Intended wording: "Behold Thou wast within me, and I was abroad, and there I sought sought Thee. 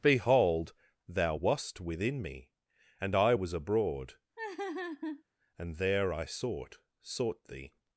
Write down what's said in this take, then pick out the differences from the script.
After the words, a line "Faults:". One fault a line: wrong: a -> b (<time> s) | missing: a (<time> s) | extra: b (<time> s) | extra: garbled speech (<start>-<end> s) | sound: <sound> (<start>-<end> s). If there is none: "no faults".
"Behold Thou wast within me, and I was abroad, and there I sought sought Thee.
Faults:
sound: laugh (4.4-5.2 s)